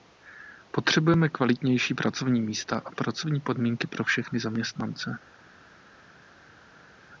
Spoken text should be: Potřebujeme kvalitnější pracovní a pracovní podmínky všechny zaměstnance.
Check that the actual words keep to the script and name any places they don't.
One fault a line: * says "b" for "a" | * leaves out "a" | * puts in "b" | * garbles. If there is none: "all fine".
* puts in "místa"
* puts in "pro"